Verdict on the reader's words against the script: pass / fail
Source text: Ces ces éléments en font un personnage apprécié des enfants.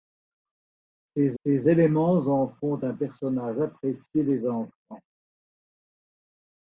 pass